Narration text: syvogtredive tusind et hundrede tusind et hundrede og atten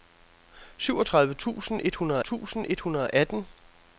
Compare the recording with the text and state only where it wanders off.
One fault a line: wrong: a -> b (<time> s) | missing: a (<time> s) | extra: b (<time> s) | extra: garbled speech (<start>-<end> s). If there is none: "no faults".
no faults